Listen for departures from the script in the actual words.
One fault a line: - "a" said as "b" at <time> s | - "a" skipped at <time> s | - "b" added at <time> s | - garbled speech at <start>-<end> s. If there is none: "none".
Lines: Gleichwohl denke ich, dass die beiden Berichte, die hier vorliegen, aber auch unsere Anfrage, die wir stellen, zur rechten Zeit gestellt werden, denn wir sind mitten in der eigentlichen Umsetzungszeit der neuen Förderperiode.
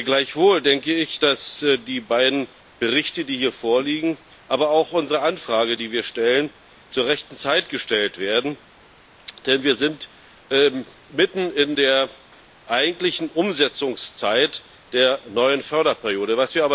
none